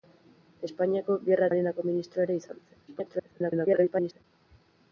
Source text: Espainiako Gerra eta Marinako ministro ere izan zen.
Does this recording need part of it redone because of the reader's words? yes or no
yes